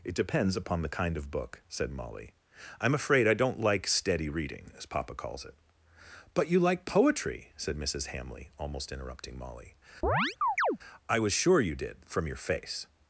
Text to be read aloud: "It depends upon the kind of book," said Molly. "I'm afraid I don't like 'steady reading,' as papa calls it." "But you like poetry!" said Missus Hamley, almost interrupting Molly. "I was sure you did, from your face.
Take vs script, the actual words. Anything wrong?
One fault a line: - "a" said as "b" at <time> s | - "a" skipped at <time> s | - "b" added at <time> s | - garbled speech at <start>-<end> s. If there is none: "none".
none